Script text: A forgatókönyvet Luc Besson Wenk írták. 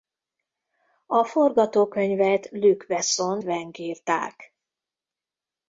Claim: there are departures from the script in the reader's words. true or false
false